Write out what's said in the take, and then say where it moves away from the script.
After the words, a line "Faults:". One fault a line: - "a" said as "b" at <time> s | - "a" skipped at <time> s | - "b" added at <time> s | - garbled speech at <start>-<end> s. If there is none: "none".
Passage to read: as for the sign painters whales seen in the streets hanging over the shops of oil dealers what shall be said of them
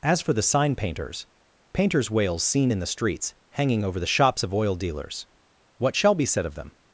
as for the sign painters painters whales seen in the streets hanging over the shops of oil dealers what shall be said of them
Faults:
- "painters" added at 1.7 s